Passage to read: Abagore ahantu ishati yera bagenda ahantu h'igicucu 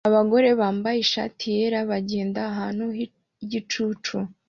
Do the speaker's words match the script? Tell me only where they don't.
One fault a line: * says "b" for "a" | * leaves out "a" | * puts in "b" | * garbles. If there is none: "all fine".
* says "bambaye" for "ahantu"